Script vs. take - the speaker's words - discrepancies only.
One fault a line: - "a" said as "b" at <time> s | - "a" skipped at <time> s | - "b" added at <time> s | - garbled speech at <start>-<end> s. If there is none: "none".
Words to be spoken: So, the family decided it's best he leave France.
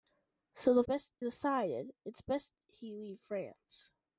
- "family" said as "best" at 0.8 s